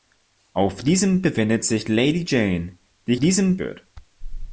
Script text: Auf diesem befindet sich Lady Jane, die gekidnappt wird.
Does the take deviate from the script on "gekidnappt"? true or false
true